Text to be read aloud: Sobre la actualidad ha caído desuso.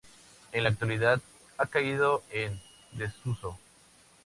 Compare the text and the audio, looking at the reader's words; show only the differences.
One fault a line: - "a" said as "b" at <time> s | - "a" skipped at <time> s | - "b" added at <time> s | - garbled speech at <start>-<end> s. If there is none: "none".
- "Sobre" said as "En" at 0.5 s
- "en" added at 2.3 s